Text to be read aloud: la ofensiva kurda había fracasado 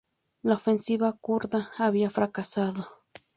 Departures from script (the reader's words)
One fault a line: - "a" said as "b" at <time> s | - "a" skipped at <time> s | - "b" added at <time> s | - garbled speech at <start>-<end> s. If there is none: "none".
none